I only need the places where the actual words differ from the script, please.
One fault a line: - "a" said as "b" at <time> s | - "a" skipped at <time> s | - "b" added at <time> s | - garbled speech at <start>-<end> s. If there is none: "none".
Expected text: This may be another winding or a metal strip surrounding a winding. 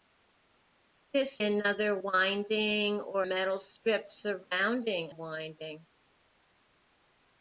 - "may be" skipped at 1.4 s
- "a" skipped at 3.2 s
- "a" skipped at 5.1 s